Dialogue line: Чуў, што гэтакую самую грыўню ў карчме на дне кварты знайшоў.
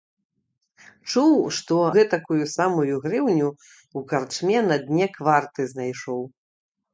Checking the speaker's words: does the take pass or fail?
pass